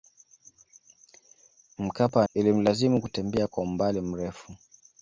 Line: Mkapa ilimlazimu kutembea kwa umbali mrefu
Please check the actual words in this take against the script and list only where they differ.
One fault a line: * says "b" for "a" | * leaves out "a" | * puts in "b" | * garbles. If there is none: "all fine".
all fine